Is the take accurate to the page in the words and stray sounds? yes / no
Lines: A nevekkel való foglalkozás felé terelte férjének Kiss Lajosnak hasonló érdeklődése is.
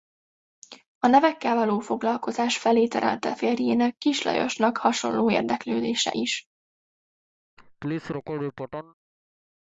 no